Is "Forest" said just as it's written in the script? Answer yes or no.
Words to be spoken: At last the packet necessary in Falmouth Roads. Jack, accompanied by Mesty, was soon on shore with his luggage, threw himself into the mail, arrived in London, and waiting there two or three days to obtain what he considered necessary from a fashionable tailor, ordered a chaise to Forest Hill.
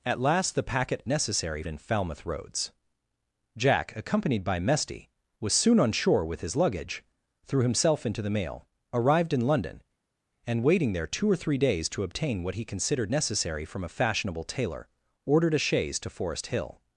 yes